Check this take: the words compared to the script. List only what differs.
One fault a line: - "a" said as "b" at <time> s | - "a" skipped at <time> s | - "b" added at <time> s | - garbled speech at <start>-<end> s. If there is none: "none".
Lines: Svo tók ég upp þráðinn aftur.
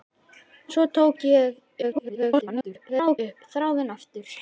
- garbled speech at 1.8-3.2 s